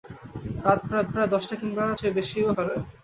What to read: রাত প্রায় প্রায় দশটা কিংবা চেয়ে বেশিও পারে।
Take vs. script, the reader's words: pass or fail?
pass